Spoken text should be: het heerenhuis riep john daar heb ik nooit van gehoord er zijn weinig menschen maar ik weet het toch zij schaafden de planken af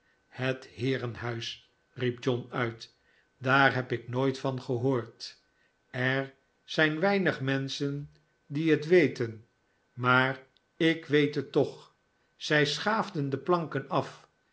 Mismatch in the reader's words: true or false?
true